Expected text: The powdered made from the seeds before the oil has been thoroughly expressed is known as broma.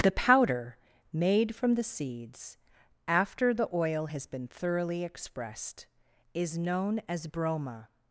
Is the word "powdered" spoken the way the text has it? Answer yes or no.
no